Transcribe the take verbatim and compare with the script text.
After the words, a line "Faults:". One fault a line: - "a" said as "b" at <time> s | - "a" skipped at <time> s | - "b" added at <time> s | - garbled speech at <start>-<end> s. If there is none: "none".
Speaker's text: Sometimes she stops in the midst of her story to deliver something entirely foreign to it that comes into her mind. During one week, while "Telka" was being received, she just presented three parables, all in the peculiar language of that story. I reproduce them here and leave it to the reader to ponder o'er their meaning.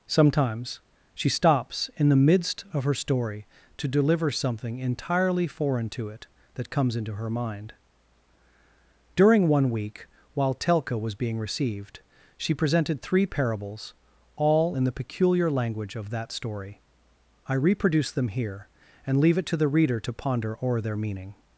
Sometimes she stops in the midst of her story to deliver something entirely foreign to it that comes into her mind. During one week, while "Telka" was being received, she presented three parables, all in the peculiar language of that story. I reproduce them here and leave it to the reader to ponder o'er their meaning.
Faults:
- "just" skipped at 12.5 s